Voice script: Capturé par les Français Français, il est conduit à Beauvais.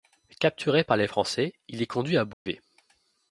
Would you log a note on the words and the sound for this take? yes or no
yes